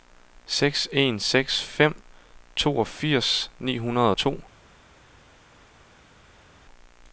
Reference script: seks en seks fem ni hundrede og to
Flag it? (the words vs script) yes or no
yes